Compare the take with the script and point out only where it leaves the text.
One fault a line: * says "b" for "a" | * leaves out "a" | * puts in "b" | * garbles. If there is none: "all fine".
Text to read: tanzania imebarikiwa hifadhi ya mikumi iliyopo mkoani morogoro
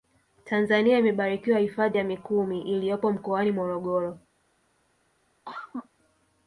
all fine